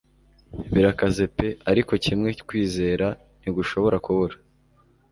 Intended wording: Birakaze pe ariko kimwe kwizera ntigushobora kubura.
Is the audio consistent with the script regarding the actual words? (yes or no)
yes